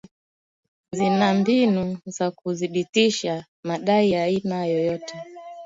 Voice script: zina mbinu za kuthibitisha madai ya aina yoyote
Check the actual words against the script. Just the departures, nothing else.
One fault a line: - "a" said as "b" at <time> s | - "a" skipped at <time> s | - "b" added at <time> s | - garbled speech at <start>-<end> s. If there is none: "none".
none